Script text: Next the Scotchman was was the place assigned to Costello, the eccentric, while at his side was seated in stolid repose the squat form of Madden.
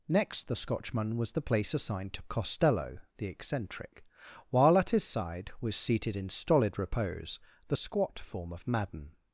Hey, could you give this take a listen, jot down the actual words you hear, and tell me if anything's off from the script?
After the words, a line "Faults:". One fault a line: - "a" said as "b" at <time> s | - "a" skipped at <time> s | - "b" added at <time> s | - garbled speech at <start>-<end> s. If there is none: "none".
Next the Scotchman was the place assigned to Costello, the eccentric, while at his side was seated in stolid repose the squat form of Madden.
Faults:
- "was" skipped at 1.3 s